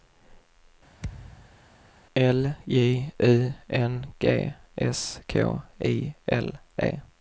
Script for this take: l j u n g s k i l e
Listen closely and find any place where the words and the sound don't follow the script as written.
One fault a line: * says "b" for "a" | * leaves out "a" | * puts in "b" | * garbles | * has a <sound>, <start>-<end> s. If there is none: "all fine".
* has a thud, 1.0-1.6 s